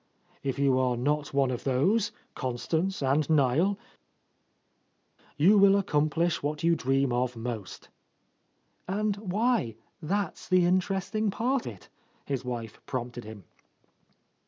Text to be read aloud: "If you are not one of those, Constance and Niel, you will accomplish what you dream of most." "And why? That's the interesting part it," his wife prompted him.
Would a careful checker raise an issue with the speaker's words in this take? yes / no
no